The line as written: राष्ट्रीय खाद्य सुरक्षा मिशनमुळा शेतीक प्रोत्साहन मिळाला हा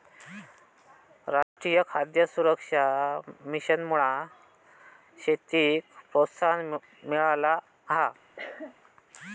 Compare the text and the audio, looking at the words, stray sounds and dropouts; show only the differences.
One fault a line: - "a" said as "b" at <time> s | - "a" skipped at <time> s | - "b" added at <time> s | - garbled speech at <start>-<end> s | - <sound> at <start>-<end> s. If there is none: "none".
- dropout at 1.4-1.6 s
- cough at 8.4-8.7 s